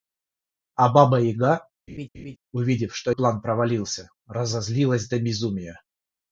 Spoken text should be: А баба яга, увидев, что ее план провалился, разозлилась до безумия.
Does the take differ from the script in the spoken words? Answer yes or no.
yes